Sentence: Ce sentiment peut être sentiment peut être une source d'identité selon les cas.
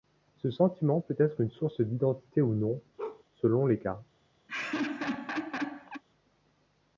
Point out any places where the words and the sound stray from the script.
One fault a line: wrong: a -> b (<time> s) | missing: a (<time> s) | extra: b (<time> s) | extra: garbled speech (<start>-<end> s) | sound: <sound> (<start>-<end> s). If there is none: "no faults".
missing: sentiment peut être (1.4 s)
extra: ou non (2.4 s)
sound: bark (3.0-3.2 s)
sound: laugh (4.5-6.0 s)